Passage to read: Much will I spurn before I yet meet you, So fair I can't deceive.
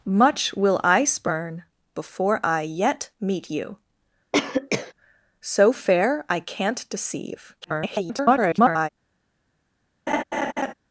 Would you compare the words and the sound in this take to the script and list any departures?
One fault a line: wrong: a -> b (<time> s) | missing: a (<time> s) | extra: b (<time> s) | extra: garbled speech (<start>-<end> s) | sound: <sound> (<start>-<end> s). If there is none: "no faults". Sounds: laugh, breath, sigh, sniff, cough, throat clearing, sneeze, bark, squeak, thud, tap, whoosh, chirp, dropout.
sound: cough (4.3-4.9 s)
extra: garbled speech (7.6-8.9 s)
sound: laugh (10.1-10.7 s)